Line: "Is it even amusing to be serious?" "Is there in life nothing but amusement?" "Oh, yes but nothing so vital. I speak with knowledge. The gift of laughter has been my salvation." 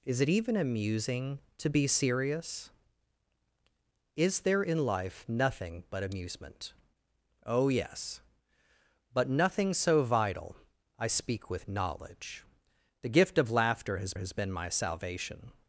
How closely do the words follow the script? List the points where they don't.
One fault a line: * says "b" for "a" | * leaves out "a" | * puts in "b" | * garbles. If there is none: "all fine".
* puts in "has"